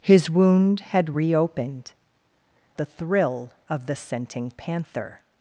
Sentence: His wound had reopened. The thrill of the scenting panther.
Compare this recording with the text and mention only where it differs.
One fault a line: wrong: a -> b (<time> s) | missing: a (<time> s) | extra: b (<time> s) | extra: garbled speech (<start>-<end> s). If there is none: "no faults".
no faults